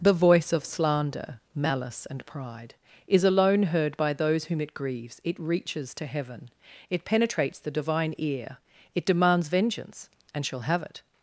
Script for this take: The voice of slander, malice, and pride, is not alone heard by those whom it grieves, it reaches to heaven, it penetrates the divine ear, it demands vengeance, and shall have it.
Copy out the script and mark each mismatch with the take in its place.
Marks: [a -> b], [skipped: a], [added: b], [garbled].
The voice of slander, malice, and pride, is [skipped: not] alone heard by those whom it grieves, it reaches to heaven, it penetrates the divine ear, it demands vengeance, and shall have it.